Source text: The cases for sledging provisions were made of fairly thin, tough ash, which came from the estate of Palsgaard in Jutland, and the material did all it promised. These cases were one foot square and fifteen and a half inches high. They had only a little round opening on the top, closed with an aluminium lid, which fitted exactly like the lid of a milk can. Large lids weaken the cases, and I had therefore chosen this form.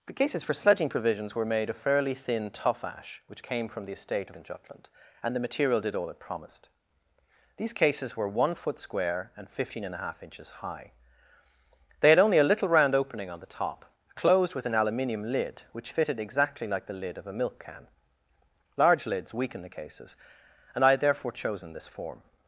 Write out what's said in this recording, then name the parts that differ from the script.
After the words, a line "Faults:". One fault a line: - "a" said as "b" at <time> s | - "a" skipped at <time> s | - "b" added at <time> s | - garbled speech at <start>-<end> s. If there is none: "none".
The cases for sledging provisions were made of fairly thin, tough ash, which came from the estate in Jutland, and the material did all it promised. These cases were one foot square and fifteen and a half inches high. They had only a little round opening on the top, closed with an aluminium lid, which fitted exactly like the lid of a milk can. Large lids weaken the cases, and I had therefore chosen this form.
Faults:
- "of Palsgaard" skipped at 4.3 s